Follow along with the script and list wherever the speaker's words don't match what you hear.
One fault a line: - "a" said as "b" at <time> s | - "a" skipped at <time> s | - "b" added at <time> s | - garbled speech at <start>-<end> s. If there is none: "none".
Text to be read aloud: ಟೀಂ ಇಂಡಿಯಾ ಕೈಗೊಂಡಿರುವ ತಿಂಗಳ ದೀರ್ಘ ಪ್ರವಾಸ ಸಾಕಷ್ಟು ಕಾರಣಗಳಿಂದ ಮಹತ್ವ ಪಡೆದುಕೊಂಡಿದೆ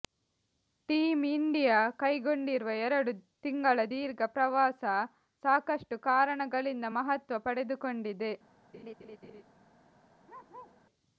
- "ಎರಡು" added at 2.9 s